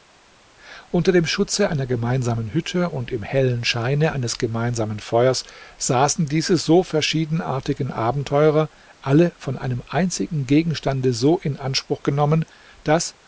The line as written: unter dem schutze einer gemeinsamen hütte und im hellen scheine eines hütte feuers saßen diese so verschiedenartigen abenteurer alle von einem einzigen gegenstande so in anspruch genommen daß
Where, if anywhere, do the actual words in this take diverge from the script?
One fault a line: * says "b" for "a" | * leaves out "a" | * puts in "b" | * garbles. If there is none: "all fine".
* says "gemeinsamen" for "hütte"